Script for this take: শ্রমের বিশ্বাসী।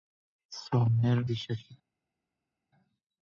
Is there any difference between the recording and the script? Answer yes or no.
no